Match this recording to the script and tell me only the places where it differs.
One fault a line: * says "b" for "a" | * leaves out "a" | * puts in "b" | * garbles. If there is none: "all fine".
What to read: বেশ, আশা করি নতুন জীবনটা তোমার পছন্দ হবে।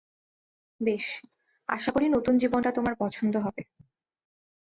all fine